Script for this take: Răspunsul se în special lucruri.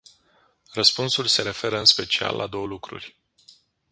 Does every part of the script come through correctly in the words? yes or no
no